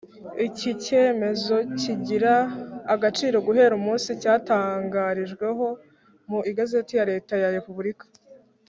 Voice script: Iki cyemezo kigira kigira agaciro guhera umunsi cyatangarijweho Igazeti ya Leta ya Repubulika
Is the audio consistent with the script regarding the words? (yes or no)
no